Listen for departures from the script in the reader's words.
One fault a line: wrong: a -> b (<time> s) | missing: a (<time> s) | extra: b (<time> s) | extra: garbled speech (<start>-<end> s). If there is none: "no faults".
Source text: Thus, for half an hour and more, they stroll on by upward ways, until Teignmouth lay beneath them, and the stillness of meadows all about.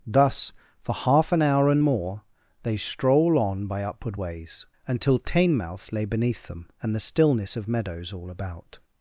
no faults